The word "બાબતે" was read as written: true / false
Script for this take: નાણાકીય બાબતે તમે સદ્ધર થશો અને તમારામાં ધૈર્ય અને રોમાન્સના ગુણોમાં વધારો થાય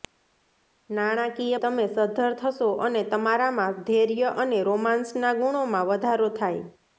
false